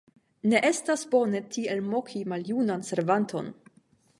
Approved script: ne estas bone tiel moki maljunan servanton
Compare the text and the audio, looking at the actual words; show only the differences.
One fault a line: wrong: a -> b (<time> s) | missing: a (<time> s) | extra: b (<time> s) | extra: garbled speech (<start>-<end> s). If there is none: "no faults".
no faults